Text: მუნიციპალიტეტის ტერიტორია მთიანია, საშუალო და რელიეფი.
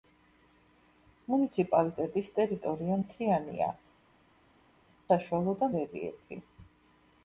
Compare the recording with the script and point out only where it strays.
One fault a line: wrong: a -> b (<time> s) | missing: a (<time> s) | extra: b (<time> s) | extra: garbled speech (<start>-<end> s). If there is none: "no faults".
no faults